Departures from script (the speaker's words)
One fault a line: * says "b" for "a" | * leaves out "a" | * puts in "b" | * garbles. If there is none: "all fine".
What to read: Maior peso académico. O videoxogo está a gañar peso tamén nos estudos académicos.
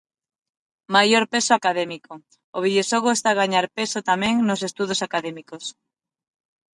all fine